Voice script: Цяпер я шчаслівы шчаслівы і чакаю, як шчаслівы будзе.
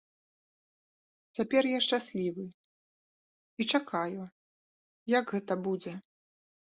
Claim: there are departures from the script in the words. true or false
true